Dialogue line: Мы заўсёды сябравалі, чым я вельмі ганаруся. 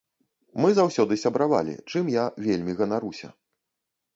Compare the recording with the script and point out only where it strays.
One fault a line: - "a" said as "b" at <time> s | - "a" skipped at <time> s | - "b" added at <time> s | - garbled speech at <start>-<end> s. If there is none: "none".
none